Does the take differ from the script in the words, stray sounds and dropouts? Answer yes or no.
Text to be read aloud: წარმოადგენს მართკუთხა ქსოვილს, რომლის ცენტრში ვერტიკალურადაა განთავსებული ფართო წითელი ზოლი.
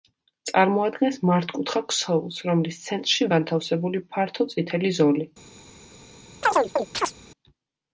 yes